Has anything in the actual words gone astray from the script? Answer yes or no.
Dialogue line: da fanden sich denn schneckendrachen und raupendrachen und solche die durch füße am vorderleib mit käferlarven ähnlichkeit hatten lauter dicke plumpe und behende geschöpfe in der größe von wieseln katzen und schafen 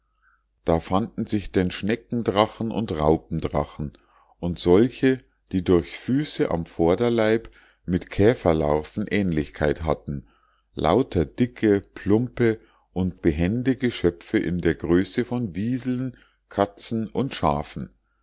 no